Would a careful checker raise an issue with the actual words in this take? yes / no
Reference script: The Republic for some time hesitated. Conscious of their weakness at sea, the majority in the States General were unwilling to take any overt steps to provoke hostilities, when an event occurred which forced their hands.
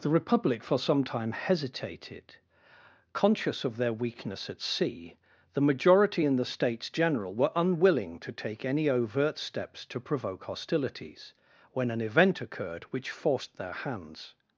no